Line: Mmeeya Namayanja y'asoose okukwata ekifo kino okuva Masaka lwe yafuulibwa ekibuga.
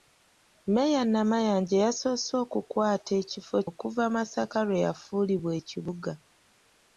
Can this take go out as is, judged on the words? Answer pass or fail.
fail